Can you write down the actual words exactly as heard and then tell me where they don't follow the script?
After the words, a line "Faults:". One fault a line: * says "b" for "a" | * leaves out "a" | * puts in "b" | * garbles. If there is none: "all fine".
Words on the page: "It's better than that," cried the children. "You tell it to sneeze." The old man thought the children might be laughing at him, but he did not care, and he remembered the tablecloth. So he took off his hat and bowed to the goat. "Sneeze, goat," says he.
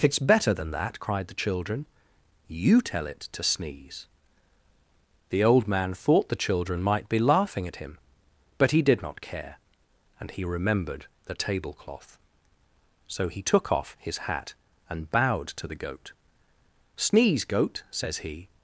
"It's better than that," cried the children. "You tell it to sneeze." The old man thought the children might be laughing at him, but he did not care, and he remembered the tablecloth. So he took off his hat and bowed to the goat. "Sneeze, goat," says he.
Faults:
all fine